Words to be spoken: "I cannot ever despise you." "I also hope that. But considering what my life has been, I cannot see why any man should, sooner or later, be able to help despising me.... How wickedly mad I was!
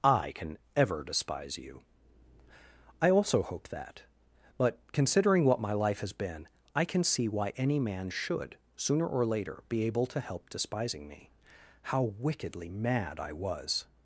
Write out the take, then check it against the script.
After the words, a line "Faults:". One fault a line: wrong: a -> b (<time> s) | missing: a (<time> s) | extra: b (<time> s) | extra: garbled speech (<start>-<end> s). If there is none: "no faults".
"I can ever despise you." "I also hope that. But considering what my life has been, I can see why any man should, sooner or later, be able to help despising me.... How wickedly mad I was!
Faults:
wrong: cannot -> can (0.3 s)
wrong: cannot -> can (6.8 s)